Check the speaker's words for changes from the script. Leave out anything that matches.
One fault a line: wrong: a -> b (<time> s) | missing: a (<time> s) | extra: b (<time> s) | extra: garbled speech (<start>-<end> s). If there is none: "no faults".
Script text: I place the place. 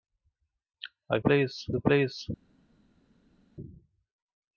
no faults